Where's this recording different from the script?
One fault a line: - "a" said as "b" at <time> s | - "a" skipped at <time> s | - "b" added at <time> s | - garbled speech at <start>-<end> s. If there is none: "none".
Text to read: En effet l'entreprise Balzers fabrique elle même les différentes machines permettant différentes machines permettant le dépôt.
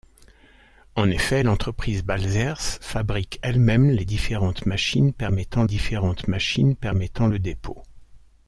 none